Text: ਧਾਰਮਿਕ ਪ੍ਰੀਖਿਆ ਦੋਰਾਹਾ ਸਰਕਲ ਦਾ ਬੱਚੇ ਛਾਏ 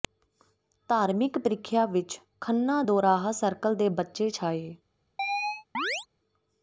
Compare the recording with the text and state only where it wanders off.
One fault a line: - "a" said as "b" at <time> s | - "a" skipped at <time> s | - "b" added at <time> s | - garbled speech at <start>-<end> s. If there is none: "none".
- "ਵਿੱਚ ਖੰਨਾ" added at 1.9 s
- "ਦਾ" said as "ਦੇ" at 3.7 s